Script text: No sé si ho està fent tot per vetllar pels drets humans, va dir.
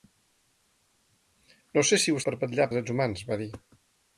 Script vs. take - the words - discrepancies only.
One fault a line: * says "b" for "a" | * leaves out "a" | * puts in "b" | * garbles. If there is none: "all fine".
* leaves out "està fent tot"
* leaves out "pels"